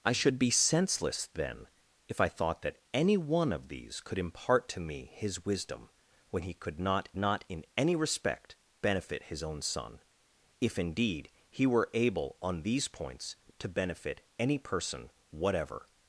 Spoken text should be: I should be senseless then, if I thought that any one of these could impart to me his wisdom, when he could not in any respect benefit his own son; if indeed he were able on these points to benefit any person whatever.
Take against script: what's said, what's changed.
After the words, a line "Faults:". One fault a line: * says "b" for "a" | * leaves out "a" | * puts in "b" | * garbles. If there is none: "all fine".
I should be senseless then, if I thought that any one of these could impart to me his wisdom, when he could not not in any respect benefit his own son; if indeed he were able on these points to benefit any person whatever.
Faults:
* puts in "not"